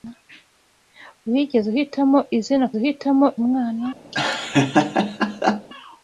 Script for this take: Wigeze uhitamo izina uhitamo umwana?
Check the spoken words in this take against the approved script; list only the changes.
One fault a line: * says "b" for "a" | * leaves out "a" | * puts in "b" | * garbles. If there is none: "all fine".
all fine